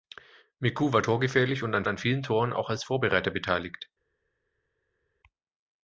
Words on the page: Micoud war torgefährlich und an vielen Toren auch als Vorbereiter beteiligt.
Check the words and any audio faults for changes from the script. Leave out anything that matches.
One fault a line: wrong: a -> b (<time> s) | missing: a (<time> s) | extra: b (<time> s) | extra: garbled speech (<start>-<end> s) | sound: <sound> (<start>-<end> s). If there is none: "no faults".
extra: an (1.9 s)